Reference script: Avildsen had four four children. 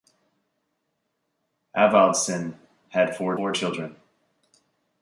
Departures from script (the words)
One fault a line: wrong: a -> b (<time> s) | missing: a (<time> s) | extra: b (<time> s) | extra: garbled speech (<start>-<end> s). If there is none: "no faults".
no faults